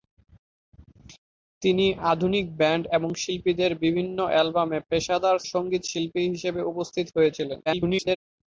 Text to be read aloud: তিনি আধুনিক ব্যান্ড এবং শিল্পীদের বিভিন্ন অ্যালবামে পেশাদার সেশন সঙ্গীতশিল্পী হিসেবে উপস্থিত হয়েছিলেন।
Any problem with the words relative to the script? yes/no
yes